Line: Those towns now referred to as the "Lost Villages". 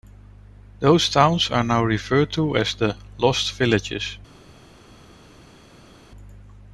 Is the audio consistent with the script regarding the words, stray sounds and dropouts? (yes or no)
no